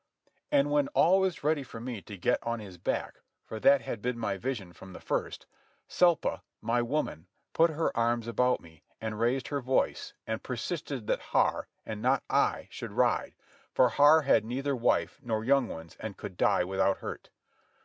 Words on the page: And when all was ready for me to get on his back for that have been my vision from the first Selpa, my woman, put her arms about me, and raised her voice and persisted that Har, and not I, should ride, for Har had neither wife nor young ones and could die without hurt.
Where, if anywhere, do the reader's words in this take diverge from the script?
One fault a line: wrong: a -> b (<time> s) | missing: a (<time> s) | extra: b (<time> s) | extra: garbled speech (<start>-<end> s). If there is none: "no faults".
wrong: have -> had (3.8 s)